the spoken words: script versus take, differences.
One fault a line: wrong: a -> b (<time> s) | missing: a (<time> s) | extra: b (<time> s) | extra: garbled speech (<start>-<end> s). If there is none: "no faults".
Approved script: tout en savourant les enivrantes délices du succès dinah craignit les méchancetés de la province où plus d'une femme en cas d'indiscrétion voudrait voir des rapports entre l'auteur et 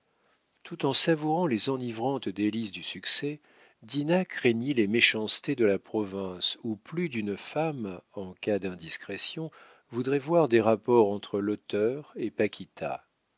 no faults